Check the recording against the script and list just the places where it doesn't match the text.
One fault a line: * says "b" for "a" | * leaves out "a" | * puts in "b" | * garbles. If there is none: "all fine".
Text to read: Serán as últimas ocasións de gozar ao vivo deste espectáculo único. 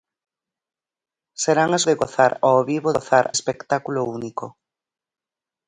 * leaves out "últimas ocasións"
* says "gozar" for "deste"